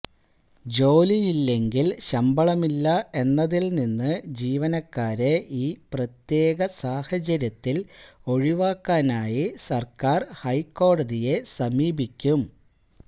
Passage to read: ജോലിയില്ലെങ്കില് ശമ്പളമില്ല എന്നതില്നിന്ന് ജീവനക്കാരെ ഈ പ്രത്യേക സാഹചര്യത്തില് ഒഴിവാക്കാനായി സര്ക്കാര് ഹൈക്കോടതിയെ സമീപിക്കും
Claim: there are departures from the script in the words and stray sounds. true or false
false